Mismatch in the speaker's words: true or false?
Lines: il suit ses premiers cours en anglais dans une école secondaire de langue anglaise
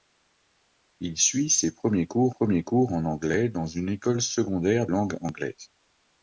true